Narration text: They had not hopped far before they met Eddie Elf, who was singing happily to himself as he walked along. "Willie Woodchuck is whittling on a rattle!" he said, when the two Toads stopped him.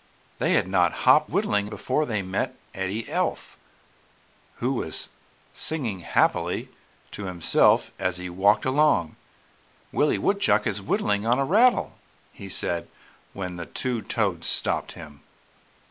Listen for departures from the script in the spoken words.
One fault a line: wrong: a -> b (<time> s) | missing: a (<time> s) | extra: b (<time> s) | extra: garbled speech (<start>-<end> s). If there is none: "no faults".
wrong: far -> whittling (1.2 s)